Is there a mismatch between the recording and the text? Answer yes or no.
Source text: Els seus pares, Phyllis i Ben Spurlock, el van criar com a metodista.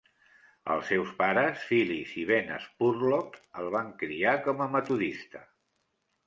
no